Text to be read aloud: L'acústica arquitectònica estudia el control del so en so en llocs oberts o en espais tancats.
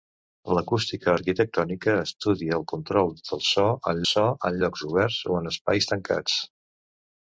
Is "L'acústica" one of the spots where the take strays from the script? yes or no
no